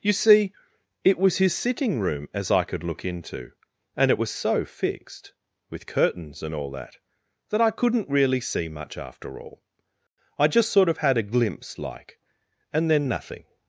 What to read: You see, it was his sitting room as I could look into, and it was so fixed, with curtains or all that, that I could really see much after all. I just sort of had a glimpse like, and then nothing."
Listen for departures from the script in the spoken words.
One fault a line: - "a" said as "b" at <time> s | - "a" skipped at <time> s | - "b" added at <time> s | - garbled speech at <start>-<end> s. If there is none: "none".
- "or" said as "and" at 6.4 s
- "could" said as "couldn't" at 7.7 s